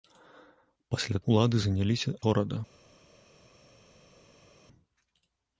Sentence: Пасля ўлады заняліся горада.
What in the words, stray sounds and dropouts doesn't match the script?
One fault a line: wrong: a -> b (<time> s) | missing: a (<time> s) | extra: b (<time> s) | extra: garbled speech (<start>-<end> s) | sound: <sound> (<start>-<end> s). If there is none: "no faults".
no faults